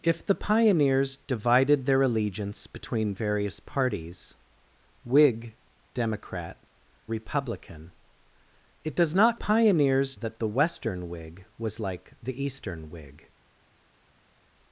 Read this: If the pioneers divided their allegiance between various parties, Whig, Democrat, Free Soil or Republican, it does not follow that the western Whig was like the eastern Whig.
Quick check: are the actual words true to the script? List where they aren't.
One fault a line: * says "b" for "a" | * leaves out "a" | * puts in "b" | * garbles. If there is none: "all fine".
* leaves out "Free Soil or"
* says "pioneers" for "follow"